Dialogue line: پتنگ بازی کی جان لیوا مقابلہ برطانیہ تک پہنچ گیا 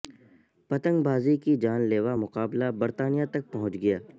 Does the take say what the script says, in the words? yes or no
yes